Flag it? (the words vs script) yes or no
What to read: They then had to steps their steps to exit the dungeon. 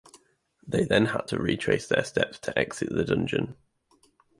yes